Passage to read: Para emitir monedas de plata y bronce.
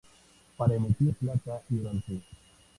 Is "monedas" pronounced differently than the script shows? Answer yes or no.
yes